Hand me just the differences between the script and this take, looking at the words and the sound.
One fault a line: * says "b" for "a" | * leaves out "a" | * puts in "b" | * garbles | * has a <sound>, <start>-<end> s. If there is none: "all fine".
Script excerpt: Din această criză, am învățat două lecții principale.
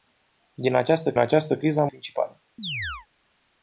* puts in "această"
* leaves out "învățat două lecții"
* has a chirp, 2.6-3.1 s